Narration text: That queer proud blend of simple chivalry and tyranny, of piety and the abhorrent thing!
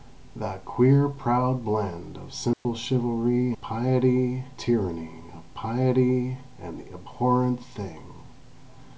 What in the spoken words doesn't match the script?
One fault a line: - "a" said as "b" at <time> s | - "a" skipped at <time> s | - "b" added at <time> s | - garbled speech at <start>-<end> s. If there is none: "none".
- "and" said as "piety" at 3.6 s